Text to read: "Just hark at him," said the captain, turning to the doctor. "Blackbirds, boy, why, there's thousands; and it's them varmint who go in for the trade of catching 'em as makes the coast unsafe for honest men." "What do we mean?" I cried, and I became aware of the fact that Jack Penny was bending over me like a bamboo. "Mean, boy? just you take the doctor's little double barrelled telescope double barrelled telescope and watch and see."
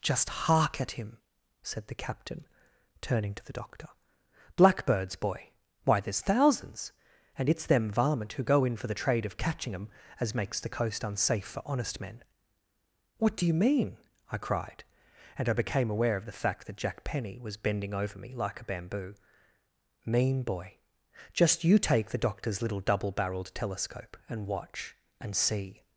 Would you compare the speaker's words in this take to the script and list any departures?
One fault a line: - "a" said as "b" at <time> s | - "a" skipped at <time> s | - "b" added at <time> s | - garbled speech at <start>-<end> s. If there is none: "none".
- "we" said as "you" at 13.4 s
- "double barrelled telescope" skipped at 24.2 s